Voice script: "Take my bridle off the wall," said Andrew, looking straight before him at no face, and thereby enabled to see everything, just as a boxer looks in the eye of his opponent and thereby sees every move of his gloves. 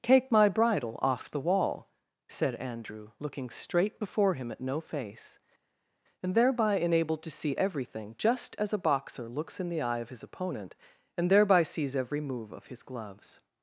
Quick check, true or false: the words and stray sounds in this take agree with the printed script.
true